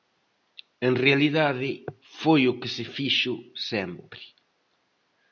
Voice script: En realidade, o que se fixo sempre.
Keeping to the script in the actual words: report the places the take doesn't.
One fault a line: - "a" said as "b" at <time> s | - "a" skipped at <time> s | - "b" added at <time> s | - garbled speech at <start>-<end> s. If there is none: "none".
- "foi" added at 2.2 s